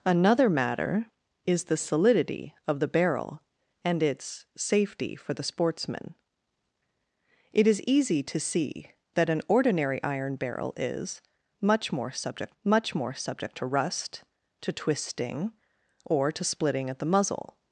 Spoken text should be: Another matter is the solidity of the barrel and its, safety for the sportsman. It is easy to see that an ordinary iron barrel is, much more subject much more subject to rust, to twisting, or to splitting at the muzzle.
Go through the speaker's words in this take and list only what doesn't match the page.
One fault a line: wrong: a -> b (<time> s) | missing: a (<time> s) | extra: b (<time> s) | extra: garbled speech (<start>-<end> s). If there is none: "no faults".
no faults